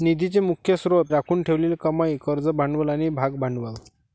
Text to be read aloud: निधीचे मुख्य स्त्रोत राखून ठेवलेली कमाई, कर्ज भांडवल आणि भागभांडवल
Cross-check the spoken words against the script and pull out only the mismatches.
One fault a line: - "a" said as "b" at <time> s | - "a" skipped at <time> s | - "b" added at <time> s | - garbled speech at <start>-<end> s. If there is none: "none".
none